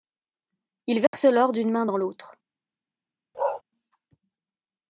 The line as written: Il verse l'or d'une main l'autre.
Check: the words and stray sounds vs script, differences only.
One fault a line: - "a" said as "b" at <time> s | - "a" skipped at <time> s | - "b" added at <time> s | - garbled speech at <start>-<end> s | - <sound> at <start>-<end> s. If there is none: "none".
- dropout at 1.1-1.1 s
- "dans" added at 1.8 s
- bark at 3.3-3.6 s